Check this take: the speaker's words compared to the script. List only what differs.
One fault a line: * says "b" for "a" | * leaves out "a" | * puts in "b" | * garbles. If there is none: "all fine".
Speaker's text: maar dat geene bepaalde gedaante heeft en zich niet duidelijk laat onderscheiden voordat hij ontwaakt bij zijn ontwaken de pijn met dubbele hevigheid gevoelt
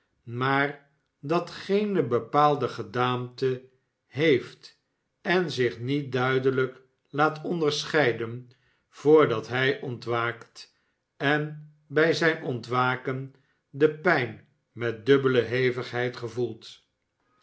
* puts in "en"